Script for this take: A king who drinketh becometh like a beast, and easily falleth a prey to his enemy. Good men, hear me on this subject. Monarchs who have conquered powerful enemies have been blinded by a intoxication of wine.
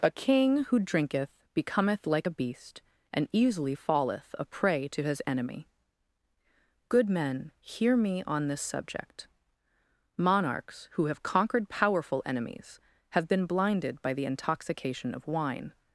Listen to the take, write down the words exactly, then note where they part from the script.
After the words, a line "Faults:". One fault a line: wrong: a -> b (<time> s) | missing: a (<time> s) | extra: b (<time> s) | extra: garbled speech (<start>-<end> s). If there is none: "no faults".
A king who drinketh becometh like a beast, and easily falleth a prey to his enemy. Good men, hear me on this subject. Monarchs who have conquered powerful enemies have been blinded by the intoxication of wine.
Faults:
wrong: a -> the (14.1 s)